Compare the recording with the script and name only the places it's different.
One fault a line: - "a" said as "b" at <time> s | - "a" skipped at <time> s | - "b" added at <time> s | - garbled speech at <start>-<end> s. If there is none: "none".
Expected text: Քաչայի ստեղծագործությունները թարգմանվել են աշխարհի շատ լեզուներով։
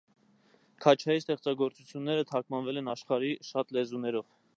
none